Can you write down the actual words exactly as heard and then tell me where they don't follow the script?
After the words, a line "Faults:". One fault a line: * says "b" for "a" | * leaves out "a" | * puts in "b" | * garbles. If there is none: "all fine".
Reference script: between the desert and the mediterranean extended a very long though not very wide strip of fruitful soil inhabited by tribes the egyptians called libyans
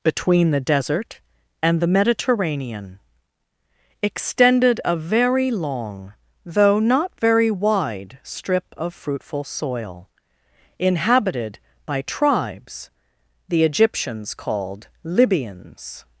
between the desert and the mediterranean extended a very long though not very wide strip of fruitful soil inhabited by tribes the egyptians called libyans
Faults:
all fine